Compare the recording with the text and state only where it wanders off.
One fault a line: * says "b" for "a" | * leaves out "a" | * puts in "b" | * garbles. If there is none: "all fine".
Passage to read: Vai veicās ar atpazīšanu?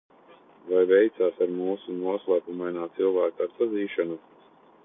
* puts in "mūsu noslēpumainā cilvēka"